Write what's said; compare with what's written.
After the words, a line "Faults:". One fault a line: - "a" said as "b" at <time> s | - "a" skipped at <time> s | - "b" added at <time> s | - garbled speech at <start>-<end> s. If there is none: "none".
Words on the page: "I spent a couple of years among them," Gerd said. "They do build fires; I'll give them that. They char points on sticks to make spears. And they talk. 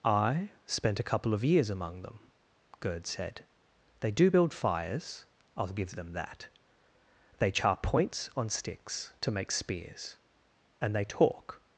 "I spent a couple of years among them," Gerd said. "They do build fires; I'll give them that. They char points on sticks to make spears. And they talk.
Faults:
none